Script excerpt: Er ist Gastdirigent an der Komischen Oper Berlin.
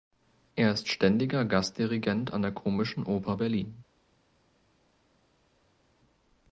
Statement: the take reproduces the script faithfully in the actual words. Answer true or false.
false